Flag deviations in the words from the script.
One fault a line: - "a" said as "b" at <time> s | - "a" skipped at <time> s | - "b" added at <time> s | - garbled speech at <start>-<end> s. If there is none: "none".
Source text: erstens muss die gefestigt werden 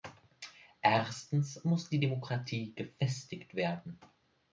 - "demokratie" added at 2.0 s